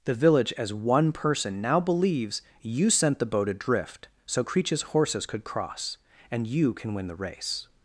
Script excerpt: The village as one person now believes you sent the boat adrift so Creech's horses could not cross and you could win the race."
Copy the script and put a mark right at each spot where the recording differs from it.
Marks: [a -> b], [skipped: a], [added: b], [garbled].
The village as one person now believes you sent the boat adrift so Creech's horses could [skipped: not] cross and you [could -> can] win the race."